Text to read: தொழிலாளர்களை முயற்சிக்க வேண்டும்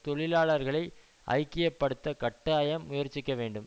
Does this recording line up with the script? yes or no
no